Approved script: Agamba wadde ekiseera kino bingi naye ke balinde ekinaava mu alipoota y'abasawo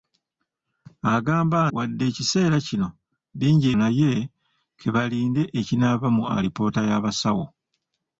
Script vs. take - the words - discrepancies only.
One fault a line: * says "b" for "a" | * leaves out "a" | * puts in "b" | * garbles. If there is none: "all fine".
all fine